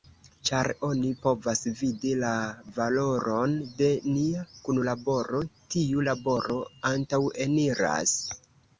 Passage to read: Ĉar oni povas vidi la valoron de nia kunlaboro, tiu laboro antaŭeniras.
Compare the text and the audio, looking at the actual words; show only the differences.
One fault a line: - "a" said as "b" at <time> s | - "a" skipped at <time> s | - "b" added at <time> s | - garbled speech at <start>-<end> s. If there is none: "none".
none